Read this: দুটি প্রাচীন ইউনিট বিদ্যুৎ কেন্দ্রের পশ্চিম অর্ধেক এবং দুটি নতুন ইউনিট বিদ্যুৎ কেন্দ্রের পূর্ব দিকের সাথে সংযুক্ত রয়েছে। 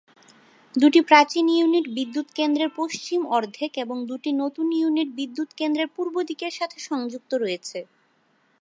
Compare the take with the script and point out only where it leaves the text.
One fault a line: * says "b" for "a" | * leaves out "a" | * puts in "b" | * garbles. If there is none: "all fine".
all fine